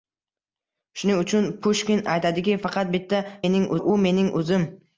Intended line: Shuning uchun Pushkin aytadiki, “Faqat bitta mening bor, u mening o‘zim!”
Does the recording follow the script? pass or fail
pass